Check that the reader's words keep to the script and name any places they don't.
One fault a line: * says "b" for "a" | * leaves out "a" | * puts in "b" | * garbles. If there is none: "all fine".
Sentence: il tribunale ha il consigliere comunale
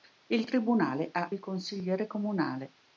all fine